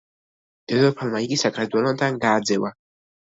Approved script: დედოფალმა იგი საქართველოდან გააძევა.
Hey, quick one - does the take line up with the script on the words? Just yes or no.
yes